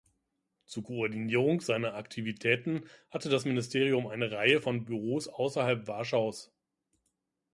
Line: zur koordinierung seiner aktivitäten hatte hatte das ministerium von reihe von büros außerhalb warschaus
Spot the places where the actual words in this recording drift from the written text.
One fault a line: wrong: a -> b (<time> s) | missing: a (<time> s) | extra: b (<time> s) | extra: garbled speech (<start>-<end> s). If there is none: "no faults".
missing: hatte (3.3 s)
wrong: von -> eine (4.1 s)